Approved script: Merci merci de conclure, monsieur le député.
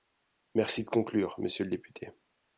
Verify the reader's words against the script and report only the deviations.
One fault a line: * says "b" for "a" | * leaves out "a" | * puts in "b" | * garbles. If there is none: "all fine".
* leaves out "merci"